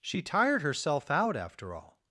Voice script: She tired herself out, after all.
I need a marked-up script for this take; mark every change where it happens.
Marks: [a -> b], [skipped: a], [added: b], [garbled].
She tired herself out, after all.